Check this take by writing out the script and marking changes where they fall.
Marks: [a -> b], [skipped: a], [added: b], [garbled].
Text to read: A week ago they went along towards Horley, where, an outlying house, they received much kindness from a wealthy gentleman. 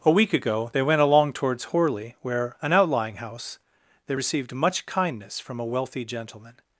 A week ago they went along towards Horley, where, an outlying house, they received much kindness from a wealthy gentleman.